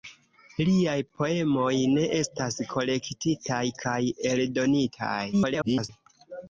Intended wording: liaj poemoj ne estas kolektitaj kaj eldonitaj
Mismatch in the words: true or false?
true